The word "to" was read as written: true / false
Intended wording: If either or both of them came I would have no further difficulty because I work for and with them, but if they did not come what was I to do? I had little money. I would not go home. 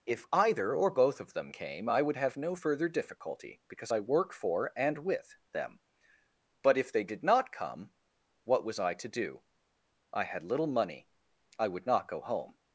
true